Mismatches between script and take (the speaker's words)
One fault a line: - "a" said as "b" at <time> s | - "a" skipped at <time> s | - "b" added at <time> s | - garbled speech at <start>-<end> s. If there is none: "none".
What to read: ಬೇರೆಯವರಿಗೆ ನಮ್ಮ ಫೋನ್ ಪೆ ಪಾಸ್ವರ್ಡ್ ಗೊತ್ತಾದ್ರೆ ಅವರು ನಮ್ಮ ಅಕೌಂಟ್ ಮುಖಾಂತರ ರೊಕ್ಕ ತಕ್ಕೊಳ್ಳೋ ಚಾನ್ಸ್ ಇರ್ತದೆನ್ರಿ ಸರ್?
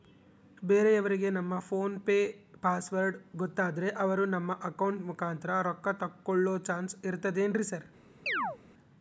none